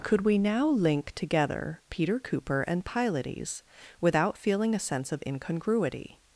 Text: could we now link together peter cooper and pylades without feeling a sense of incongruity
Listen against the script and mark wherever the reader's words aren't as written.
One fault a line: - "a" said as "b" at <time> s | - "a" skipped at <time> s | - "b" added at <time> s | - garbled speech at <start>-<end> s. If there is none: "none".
none